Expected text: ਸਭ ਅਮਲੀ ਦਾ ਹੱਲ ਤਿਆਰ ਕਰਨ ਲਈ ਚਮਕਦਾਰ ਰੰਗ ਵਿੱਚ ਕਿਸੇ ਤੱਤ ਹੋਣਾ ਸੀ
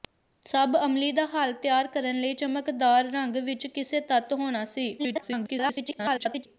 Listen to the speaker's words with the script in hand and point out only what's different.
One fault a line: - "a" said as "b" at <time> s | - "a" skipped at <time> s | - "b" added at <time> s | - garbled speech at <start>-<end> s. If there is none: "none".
- garbled speech at 5.0-6.5 s